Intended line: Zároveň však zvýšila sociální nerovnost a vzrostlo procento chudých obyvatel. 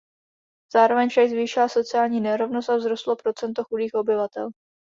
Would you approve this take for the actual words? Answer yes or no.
yes